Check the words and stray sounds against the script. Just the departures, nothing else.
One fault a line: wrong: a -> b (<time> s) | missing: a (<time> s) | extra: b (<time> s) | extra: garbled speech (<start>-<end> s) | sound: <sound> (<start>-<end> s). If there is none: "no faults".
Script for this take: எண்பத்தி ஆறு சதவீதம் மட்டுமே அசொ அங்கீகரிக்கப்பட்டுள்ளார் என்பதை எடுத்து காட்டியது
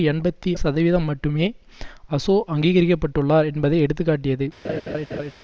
missing: ஆறு (0.5 s)
sound: laugh (4.6-5.3 s)